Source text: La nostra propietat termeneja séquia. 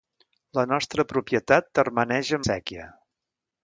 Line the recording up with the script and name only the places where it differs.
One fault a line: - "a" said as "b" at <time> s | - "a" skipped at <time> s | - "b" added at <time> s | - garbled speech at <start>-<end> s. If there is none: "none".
none